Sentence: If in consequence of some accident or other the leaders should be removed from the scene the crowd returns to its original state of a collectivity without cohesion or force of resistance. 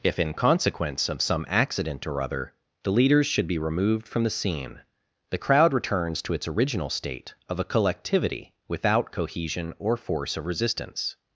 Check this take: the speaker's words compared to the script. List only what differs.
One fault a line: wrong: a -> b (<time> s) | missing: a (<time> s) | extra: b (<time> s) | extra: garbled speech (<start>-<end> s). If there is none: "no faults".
no faults